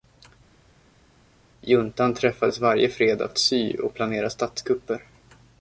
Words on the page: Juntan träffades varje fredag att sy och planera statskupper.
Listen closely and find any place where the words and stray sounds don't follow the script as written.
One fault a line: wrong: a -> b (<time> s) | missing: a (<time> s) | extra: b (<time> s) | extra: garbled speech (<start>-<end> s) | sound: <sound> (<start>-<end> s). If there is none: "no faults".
no faults